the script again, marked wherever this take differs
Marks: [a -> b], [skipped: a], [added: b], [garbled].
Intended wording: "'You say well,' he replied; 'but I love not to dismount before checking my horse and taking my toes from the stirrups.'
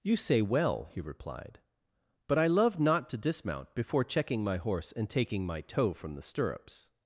"'You say well,' he replied; 'but I love not to dismount before checking my horse and taking my [toes -> toe] from the stirrups.'